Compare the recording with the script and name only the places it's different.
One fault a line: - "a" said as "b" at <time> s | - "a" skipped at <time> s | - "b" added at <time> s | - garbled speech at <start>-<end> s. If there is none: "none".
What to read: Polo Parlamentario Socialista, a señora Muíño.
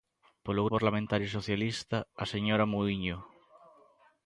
none